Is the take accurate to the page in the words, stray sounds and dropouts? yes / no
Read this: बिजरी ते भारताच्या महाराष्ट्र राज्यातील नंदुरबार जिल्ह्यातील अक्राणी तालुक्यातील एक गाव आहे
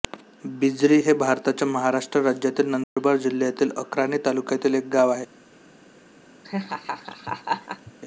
no